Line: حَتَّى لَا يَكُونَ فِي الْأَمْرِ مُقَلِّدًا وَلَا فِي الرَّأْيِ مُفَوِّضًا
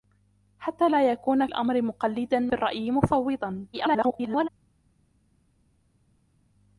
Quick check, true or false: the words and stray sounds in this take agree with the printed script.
false